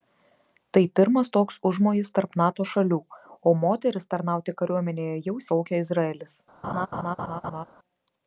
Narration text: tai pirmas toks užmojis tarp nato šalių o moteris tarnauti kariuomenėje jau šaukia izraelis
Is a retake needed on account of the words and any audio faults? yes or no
yes